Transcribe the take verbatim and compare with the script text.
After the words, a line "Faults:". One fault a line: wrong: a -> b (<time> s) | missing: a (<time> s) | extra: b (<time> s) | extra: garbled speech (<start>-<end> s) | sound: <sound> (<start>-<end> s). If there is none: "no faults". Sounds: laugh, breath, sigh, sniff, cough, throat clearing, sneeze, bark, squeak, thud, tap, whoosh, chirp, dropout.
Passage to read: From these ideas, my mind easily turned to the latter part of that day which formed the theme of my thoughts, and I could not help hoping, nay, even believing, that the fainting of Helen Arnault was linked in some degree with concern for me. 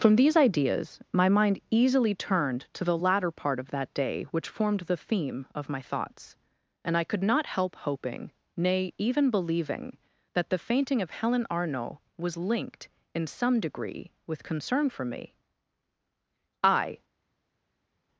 From these ideas, my mind easily turned to the latter part of that day which formed the theme of my thoughts, and I could not help hoping, nay, even believing, that the fainting of Helen Arnault was linked in some degree with concern for me. I
Faults:
extra: I (16.6 s)